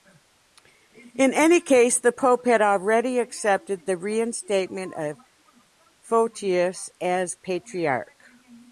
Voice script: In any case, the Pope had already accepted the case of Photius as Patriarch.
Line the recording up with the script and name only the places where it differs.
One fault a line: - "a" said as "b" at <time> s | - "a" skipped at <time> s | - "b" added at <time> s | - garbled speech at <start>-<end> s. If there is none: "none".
- "case" said as "reinstatement" at 4.0 s